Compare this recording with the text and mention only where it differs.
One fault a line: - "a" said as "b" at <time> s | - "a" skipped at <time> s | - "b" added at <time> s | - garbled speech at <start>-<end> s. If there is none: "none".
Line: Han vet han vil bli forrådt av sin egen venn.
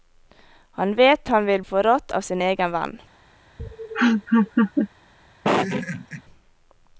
- "bli" skipped at 1.6 s